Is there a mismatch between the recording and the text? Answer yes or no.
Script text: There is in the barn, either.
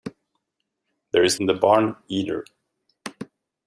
no